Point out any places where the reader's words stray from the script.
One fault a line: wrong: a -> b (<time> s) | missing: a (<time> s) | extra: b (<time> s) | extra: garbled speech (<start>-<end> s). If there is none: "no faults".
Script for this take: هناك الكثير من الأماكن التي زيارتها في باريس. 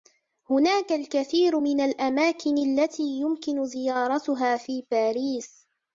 extra: يمكن (3.0 s)